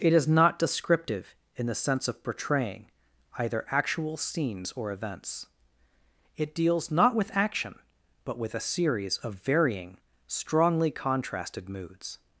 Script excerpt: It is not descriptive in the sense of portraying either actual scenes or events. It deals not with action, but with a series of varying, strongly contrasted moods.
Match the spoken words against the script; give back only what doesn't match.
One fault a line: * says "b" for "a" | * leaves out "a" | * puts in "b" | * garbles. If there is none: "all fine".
all fine